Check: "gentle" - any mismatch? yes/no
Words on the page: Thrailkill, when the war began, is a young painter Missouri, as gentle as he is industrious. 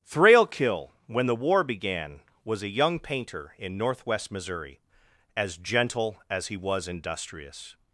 no